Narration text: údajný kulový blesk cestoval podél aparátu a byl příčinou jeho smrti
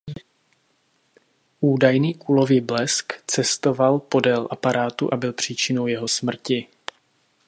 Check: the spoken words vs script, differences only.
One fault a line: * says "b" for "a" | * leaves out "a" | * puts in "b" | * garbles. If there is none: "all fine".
all fine